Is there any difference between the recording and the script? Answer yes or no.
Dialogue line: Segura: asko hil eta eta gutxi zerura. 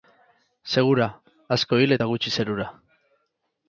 yes